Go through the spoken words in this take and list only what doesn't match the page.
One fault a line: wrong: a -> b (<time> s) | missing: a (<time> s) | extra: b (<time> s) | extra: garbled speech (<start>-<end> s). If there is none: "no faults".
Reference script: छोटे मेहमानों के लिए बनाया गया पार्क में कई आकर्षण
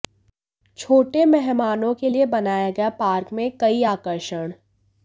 no faults